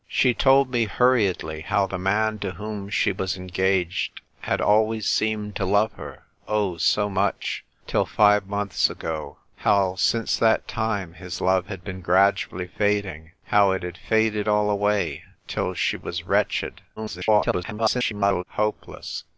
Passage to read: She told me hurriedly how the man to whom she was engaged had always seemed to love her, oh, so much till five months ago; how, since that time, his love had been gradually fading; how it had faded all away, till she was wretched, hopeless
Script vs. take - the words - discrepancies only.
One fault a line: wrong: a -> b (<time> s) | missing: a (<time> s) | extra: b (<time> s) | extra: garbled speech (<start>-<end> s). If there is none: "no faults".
extra: garbled speech (17.0-18.4 s)